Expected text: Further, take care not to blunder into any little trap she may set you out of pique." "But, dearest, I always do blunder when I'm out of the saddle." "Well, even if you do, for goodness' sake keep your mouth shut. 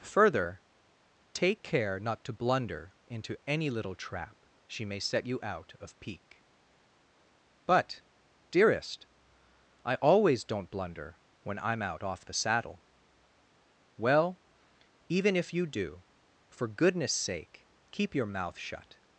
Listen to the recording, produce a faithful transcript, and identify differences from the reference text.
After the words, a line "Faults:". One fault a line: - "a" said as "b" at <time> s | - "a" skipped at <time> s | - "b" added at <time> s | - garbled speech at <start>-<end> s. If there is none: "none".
Further, take care not to blunder into any little trap she may set you out of pique." "But, dearest, I always don't blunder when I'm out off the saddle." "Well, even if you do, for goodness' sake keep your mouth shut.
Faults:
- "do" said as "don't" at 10.4 s
- "of" said as "off" at 12.0 s